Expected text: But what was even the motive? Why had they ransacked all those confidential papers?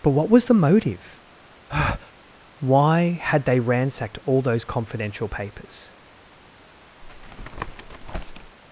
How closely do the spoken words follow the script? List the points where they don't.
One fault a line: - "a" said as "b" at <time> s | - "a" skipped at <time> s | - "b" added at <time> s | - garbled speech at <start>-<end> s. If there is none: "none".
- "even" skipped at 0.5 s